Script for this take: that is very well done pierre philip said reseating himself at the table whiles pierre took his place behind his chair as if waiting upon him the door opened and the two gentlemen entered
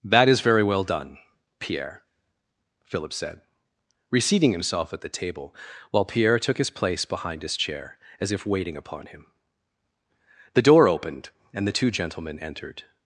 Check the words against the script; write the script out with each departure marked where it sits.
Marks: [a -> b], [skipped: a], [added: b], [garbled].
that is very well done pierre philip said reseating himself at the table [whiles -> while] pierre took his place behind his chair as if waiting upon him the door opened and the two gentlemen entered